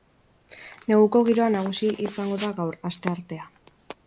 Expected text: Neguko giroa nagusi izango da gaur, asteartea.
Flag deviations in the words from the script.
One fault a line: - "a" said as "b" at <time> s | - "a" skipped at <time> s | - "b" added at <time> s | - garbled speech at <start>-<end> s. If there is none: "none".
none